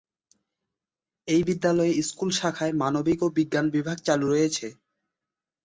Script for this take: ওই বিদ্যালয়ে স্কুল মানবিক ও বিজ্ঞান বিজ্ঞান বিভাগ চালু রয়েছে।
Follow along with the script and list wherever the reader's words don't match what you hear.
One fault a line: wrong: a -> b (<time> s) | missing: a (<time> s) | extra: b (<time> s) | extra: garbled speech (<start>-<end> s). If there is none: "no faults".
wrong: ওই -> এই (1.3 s)
extra: শাখায় (2.4 s)
missing: বিজ্ঞান (3.6 s)